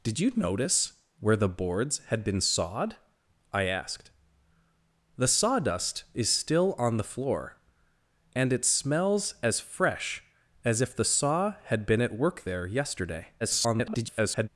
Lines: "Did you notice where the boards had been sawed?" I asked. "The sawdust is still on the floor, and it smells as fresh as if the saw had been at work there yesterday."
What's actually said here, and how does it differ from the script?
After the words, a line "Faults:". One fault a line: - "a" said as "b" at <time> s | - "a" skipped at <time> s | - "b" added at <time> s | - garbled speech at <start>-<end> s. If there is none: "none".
"Did you notice where the boards had been sawed?" I asked. "The sawdust is still on the floor, and it smells as fresh as if the saw had been at work there yesterday." [garbled]
Faults:
- garbled speech at 13.4-14.5 s